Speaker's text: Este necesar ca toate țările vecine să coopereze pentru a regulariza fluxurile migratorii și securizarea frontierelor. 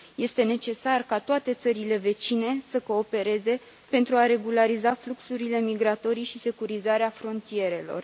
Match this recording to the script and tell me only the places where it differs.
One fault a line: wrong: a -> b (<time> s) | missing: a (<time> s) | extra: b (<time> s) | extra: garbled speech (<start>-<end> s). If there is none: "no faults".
no faults